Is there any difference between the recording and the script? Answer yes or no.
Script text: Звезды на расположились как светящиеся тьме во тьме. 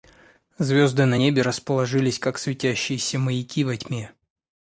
yes